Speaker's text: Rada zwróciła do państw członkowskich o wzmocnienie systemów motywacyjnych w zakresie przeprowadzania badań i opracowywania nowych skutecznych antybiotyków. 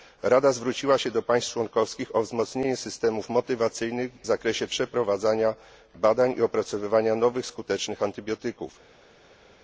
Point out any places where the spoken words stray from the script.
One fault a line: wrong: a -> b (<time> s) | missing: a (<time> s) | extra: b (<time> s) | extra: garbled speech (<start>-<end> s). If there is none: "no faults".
extra: się (1.0 s)